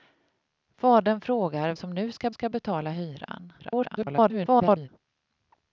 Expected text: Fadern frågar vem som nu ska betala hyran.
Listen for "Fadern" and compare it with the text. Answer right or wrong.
right